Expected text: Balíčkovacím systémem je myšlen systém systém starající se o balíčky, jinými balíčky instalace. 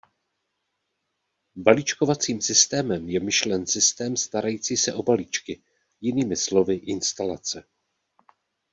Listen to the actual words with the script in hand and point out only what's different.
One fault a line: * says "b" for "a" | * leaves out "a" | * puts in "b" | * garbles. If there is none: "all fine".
* leaves out "systém"
* says "slovy" for "balíčky"